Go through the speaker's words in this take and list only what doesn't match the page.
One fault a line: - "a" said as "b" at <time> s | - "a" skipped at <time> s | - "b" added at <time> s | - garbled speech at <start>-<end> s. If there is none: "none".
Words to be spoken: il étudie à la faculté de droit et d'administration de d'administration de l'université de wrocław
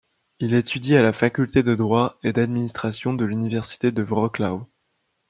- "d'administration de" skipped at 3.2 s